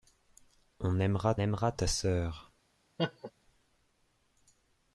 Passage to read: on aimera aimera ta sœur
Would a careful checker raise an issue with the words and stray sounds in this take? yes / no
yes